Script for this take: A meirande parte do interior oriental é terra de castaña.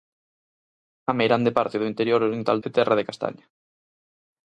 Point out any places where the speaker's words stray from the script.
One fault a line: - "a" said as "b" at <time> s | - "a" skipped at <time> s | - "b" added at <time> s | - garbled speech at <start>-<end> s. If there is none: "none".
none